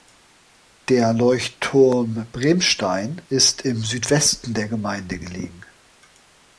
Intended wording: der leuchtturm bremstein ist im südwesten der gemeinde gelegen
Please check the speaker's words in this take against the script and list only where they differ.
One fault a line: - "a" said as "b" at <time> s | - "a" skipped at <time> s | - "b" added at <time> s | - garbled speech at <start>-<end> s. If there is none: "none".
none